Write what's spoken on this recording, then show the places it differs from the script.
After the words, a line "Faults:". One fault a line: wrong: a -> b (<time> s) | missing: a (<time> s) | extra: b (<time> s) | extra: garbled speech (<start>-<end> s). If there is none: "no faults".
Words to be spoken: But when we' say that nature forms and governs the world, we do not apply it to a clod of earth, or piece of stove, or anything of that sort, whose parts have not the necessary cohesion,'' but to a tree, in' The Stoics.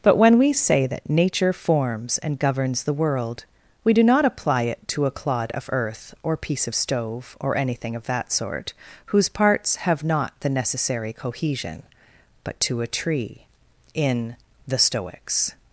But when we' say that nature forms and governs the world, we do not apply it to a clod of earth, or piece of stove, or anything of that sort, whose parts have not the necessary cohesion,'' but to a tree, in' The Stoics.
Faults:
no faults